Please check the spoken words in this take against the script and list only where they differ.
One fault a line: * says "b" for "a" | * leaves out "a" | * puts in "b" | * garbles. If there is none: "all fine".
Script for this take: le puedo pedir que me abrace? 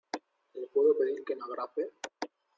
all fine